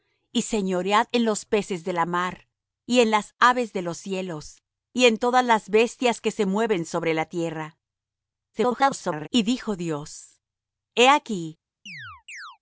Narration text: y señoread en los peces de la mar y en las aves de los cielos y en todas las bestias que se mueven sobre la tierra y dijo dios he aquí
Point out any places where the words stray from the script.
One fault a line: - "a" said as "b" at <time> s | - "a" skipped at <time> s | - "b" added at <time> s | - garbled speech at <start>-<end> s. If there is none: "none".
- garbled speech at 8.5-9.3 s